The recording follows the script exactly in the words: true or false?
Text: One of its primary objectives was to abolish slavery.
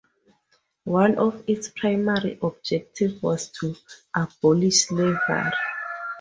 true